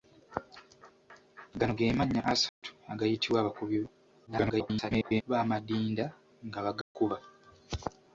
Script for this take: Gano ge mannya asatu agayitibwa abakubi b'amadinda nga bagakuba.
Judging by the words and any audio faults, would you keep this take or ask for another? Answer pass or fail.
fail